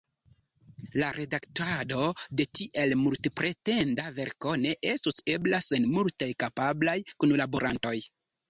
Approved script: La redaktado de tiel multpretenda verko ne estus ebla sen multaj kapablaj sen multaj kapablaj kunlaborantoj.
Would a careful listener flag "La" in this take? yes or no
no